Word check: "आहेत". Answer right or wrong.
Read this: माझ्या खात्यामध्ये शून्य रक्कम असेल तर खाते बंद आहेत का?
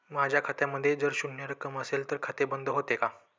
wrong